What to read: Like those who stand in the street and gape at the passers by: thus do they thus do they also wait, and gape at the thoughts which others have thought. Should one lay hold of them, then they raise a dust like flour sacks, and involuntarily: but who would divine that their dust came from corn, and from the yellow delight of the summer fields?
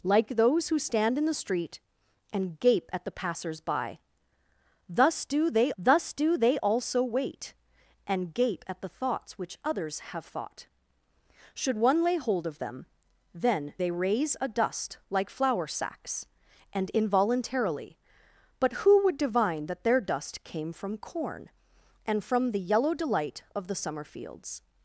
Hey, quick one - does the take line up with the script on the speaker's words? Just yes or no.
yes